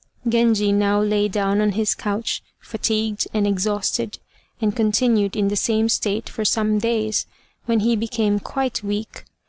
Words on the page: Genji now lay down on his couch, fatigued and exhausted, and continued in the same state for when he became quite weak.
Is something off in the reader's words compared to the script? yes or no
yes